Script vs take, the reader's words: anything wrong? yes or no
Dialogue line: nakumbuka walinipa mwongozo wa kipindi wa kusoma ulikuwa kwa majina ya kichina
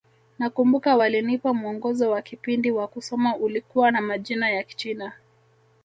yes